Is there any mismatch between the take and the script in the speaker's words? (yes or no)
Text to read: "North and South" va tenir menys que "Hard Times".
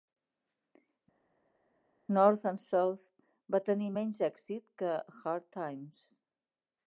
yes